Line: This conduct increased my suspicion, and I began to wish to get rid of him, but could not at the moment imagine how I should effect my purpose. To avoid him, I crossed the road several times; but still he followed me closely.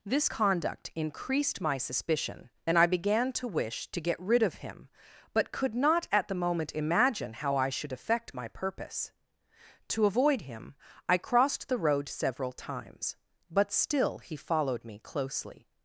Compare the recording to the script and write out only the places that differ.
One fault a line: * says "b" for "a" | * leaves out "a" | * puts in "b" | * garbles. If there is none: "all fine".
all fine